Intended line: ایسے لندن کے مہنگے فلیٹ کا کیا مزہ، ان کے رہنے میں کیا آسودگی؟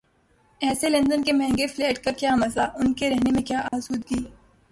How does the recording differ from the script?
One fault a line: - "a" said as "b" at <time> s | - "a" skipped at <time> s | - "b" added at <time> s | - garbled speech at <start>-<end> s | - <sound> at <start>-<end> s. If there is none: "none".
- dropout at 3.7-3.7 s